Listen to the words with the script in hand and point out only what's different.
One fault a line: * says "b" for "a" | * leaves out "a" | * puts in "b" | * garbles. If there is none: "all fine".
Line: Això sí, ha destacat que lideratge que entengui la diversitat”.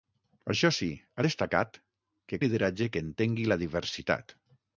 all fine